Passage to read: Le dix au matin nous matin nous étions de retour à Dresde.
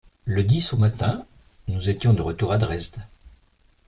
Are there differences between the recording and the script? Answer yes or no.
yes